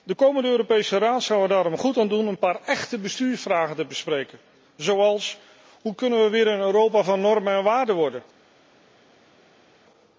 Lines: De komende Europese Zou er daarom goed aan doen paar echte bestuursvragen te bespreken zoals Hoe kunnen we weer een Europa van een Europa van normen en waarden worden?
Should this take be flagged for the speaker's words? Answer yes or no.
yes